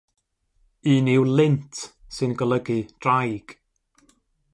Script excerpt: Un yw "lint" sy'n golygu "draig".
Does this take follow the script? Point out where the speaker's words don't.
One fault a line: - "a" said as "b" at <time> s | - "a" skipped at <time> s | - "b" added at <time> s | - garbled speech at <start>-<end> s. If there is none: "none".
none